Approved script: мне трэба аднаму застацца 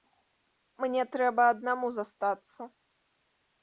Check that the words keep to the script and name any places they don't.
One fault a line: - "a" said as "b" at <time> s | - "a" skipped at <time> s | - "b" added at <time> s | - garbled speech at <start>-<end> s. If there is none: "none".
none